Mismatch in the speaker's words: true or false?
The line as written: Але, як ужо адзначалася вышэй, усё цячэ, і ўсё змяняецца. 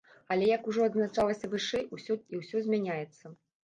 true